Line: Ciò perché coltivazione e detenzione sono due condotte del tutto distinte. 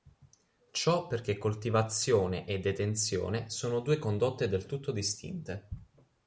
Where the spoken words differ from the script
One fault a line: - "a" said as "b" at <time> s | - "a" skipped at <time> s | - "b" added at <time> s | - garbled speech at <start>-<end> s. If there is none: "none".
none